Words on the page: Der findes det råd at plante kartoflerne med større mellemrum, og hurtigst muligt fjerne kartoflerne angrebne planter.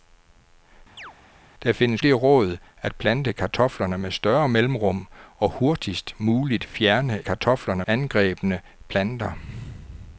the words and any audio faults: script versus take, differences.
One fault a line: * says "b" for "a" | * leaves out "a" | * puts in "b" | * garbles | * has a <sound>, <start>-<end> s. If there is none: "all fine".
* has a chirp, 1.0-1.1 s